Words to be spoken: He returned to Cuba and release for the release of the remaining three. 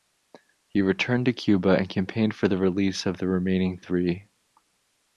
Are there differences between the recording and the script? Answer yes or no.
yes